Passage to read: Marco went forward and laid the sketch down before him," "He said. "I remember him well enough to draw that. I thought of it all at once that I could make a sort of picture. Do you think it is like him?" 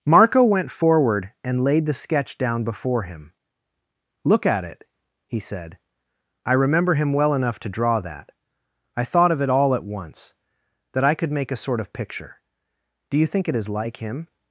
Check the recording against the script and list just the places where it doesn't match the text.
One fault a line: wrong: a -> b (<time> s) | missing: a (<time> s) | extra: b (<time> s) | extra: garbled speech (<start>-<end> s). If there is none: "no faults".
extra: Look at it (4.2 s)